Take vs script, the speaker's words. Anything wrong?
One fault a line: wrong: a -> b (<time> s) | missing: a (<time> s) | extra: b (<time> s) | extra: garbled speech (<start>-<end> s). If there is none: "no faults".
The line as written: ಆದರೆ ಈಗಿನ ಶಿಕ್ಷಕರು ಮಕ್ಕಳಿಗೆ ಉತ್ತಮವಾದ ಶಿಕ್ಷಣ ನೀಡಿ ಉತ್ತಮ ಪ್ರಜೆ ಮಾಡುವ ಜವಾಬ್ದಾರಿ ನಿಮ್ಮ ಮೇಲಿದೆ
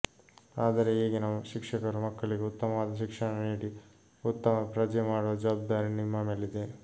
no faults